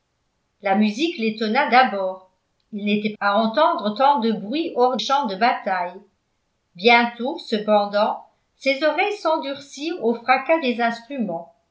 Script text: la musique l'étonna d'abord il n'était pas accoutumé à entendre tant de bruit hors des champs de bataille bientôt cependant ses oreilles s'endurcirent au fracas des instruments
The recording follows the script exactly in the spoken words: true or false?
false